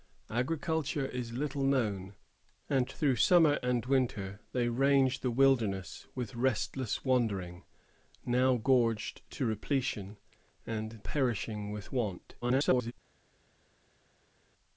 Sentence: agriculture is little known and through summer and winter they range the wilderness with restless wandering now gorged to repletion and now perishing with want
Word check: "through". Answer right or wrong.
right